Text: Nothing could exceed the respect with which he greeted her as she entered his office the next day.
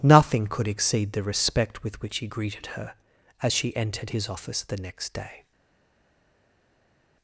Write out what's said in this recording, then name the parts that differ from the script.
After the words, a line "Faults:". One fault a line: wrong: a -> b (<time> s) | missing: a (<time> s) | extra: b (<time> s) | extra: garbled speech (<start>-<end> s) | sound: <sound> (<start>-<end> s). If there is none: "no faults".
Nothing could exceed the respect with which he greeted her as she entered his office the next day.
Faults:
no faults